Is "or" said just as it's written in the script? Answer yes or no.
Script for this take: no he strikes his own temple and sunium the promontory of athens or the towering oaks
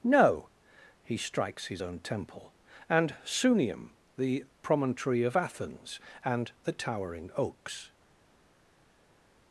no